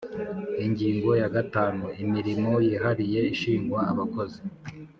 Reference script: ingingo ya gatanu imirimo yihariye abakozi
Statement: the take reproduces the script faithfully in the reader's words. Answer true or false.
false